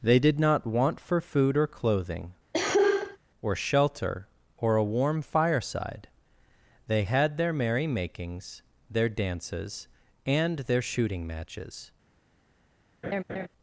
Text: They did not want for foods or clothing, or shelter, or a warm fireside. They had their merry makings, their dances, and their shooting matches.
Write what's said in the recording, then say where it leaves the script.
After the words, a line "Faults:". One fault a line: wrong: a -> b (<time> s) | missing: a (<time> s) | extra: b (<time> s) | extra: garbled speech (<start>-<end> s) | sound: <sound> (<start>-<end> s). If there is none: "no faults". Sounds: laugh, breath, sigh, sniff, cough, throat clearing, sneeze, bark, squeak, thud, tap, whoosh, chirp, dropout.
They did not want for food or clothing, or shelter, or a warm fireside. They had their merry makings, their dances, and their shooting matches.
Faults:
wrong: foods -> food (1.2 s)
sound: cough (2.5-3.2 s)
sound: laugh (13.0-13.5 s)